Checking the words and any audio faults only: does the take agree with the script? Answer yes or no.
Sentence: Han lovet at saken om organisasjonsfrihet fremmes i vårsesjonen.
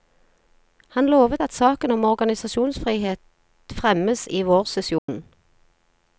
no